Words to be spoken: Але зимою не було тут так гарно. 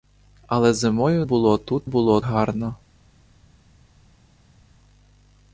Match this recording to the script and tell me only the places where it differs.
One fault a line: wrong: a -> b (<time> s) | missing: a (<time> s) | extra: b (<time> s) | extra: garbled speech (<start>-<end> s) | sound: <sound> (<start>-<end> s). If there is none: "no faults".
missing: не (1.2 s)
wrong: так -> було (1.8 s)